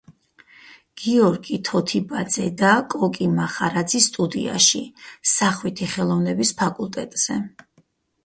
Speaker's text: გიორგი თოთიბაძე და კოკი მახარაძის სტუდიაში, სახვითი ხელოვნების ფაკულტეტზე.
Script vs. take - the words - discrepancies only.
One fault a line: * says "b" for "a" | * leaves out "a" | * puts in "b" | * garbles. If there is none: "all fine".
all fine